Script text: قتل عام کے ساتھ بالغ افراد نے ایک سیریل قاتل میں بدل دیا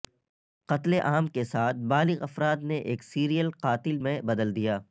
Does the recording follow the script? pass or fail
pass